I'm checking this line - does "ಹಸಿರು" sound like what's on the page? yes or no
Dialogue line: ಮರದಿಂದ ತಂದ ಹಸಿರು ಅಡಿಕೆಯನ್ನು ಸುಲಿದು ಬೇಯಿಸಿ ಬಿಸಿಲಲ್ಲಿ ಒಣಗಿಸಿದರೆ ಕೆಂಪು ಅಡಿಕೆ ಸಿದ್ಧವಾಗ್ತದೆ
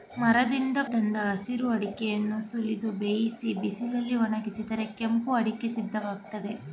yes